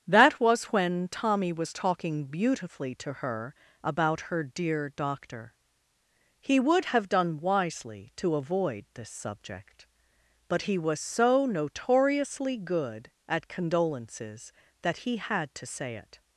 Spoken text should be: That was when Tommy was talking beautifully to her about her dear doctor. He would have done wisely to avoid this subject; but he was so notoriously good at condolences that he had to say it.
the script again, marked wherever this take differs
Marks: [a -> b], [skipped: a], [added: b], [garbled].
That was when Tommy was talking beautifully to her about her dear doctor. He would have done wisely to avoid this subject; but he was so notoriously good at condolences that he had to say it.